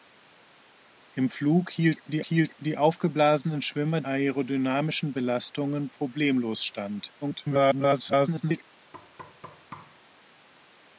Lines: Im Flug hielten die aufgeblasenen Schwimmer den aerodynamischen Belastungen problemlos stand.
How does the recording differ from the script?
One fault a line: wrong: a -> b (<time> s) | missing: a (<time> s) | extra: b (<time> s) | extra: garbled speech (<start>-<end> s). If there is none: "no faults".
extra: hielten die (2.2 s)
missing: den (4.0 s)
extra: garbled speech (7.2-8.6 s)